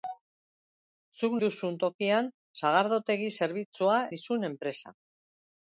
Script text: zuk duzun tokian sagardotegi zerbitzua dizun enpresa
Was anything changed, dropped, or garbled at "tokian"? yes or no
no